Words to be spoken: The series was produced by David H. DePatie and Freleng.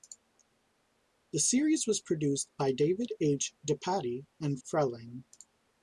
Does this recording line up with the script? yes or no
yes